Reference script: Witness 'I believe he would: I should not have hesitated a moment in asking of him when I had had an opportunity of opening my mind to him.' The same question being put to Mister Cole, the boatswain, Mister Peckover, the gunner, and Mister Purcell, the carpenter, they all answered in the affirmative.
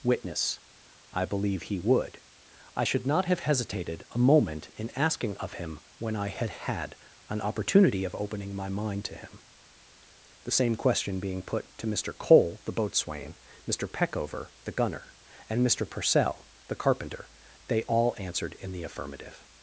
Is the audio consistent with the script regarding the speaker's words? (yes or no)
yes